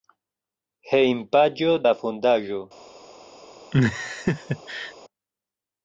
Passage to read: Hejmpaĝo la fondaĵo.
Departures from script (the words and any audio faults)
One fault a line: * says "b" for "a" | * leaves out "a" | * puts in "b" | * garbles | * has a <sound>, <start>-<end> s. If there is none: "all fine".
* has a laugh, 3.7-4.9 s